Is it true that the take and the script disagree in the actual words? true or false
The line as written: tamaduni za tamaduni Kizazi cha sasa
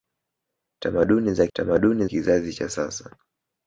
false